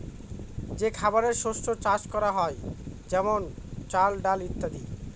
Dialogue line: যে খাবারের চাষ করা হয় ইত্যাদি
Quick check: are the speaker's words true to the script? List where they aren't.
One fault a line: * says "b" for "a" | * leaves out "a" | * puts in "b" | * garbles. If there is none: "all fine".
* puts in "শস্য"
* puts in "যেমন চাল ডাল"